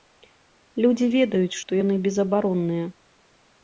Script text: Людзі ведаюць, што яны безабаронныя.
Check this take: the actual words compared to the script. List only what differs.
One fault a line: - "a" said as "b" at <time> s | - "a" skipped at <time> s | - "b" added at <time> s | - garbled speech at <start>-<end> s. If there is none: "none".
none